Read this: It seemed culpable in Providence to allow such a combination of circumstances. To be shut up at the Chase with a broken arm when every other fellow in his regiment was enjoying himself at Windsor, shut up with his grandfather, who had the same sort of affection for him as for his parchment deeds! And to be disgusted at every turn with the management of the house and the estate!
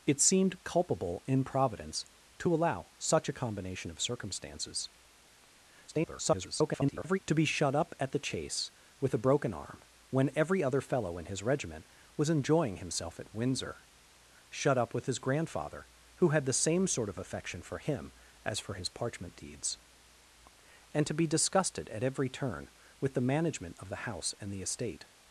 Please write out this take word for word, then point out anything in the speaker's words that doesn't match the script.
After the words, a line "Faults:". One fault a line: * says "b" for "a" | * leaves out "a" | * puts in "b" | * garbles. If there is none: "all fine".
It seemed culpable in Providence to allow such a combination of circumstances. [garbled] To be shut up at the Chase with a broken arm when every other fellow in his regiment was enjoying himself at Windsor, shut up with his grandfather, who had the same sort of affection for him as for his parchment deeds! And to be disgusted at every turn with the management of the house and the estate!
Faults:
* garbles